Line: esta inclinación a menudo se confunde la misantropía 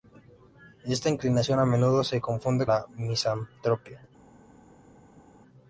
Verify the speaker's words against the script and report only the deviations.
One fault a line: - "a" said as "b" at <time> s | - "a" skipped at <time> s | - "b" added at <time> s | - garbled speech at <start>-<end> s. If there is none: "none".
none